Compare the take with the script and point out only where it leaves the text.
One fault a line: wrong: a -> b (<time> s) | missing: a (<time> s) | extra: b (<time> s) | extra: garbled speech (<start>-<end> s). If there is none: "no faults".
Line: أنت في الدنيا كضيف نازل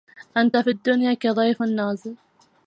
no faults